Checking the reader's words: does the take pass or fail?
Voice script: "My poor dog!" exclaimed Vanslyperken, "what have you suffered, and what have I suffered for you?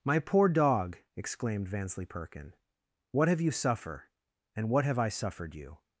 fail